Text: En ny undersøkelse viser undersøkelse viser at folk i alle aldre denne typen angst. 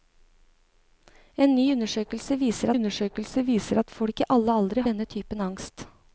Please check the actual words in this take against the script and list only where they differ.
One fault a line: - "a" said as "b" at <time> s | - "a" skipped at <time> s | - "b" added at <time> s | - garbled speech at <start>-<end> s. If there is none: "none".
none